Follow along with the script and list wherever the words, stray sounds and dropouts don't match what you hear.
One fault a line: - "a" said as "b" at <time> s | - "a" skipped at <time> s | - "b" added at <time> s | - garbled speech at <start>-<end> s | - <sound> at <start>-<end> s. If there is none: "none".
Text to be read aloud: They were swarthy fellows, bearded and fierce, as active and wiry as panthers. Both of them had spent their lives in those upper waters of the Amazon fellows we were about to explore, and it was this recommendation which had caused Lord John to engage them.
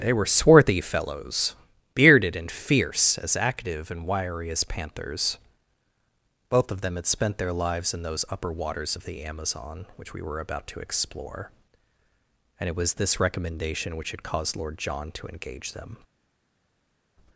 - "fellows" said as "which" at 10.0 s